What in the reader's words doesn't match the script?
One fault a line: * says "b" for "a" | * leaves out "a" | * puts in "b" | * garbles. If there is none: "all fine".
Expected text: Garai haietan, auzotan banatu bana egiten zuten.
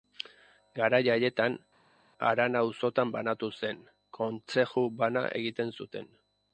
* puts in "harana"
* puts in "zen kontzeju"